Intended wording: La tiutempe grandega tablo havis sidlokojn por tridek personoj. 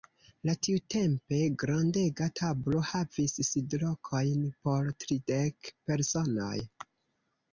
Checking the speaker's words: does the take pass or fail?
pass